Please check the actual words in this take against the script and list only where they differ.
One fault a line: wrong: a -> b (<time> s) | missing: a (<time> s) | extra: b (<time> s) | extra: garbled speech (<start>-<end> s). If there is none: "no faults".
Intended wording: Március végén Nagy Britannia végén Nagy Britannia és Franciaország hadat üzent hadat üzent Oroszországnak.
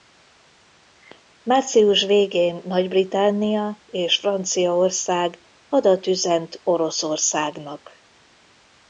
missing: végén Nagy Britannia (3.8 s)
missing: hadat üzent (6.6 s)